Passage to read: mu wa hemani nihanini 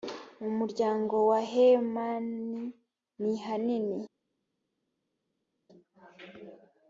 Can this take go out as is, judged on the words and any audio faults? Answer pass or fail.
fail